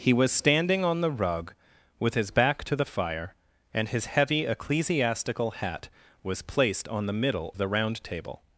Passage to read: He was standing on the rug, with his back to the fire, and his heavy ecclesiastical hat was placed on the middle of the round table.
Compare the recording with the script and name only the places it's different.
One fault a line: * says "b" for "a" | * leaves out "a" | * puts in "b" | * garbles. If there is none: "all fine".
* leaves out "of"